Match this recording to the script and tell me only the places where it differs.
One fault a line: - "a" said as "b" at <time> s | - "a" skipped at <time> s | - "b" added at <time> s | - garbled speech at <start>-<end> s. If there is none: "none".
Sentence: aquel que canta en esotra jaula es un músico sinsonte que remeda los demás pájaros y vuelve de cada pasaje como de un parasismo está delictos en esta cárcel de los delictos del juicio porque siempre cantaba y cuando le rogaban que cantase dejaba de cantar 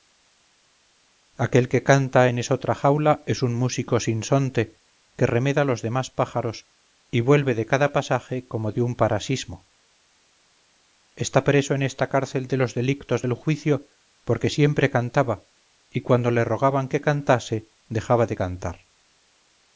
- "delictos" said as "preso" at 11.4 s